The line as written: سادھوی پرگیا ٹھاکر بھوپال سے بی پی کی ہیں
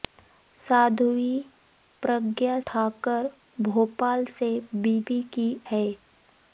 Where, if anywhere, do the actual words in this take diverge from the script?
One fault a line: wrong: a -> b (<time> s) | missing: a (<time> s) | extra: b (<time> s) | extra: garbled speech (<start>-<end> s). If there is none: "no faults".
no faults